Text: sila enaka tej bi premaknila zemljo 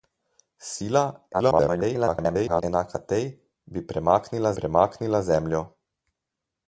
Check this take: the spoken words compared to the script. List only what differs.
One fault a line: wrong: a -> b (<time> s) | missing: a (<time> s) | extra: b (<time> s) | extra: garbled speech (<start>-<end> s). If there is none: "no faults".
extra: garbled speech (1.3-2.6 s)
extra: premaknila (4.6 s)